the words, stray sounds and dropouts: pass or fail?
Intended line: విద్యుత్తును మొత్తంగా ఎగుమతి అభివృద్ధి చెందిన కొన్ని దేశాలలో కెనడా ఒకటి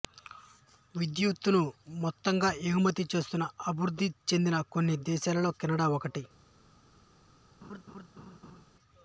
fail